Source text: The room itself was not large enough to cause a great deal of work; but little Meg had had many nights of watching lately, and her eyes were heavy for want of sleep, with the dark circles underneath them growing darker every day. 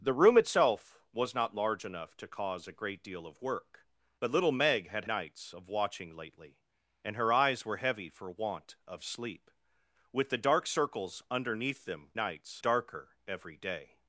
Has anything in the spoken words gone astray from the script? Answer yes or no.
yes